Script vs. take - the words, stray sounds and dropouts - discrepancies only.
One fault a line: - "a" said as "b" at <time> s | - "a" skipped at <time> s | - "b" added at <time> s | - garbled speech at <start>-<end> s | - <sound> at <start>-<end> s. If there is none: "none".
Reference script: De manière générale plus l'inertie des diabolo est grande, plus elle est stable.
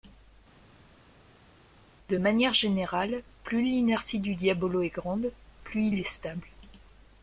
- "des" said as "du" at 4.2 s
- "elle" said as "il" at 5.9 s